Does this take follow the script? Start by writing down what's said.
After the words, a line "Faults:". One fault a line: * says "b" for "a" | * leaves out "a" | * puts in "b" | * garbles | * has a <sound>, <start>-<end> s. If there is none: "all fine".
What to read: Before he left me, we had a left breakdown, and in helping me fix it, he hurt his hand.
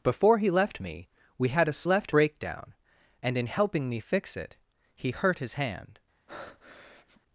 Before he left me, we had a left breakdown, and in helping me fix it, he hurt his hand.
Faults:
* has a breath, 6.3-7.2 s